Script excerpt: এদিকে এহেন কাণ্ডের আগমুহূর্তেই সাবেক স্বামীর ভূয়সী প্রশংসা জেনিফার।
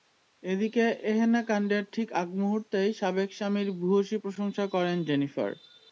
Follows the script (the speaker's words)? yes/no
no